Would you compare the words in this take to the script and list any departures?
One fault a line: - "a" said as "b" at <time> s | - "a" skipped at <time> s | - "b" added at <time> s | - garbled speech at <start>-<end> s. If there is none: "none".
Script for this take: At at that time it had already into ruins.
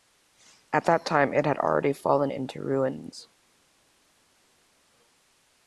- "at" skipped at 0.8 s
- "fallen" added at 1.9 s